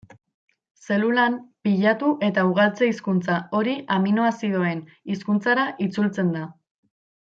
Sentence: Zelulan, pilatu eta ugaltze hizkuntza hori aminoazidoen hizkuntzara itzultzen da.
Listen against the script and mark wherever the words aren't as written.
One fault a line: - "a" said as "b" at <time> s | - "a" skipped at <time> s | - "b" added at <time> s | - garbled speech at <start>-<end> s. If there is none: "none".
none